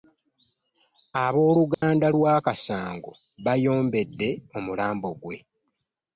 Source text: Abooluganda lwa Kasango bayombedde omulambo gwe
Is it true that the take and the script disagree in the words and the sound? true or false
true